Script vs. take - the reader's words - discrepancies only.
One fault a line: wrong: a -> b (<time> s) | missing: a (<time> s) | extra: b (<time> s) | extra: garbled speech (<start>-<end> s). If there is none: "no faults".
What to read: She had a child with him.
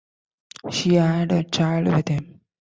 no faults